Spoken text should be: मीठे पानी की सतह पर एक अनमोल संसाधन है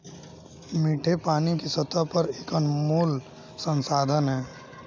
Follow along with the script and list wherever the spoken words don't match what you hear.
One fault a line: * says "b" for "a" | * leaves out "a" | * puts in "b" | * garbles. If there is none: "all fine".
all fine